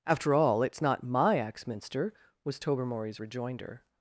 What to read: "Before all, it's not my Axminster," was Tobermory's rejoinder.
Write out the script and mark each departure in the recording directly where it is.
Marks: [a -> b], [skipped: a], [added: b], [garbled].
["Before -> After] all, it's not my Axminster," was Tobermory's rejoinder.